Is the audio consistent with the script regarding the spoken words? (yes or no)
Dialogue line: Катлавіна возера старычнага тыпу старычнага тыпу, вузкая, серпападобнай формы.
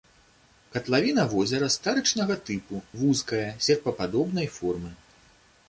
no